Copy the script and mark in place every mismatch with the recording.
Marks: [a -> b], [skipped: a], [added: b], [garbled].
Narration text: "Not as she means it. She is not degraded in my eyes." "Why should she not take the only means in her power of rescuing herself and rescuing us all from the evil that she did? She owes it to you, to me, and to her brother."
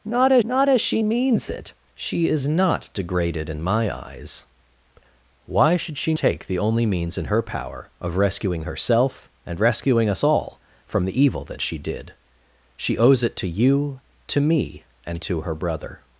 "Not as [added: not as] she means it. She is not degraded in my eyes." "Why should she [skipped: not] take the only means in her power of rescuing herself and rescuing us all from the evil that she did? She owes it to you, to me, and to her brother."